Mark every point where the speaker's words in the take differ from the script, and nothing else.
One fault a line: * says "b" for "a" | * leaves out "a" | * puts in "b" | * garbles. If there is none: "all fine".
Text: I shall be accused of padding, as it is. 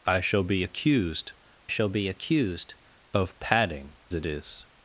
* puts in "shall be accused"
* leaves out "as"